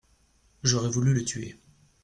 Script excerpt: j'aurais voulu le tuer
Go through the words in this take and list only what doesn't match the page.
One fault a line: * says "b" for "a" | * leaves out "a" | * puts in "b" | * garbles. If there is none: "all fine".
all fine